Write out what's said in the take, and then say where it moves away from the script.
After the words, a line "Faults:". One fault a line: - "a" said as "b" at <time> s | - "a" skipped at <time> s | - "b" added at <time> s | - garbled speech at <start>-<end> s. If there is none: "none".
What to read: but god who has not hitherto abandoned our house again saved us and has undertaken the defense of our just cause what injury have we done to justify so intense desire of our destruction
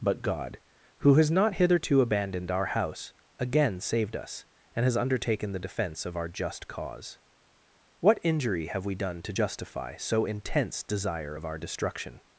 but god who has not hitherto abandoned our house again saved us and has undertaken the defense of our just cause what injury have we done to justify so intense desire of our destruction
Faults:
none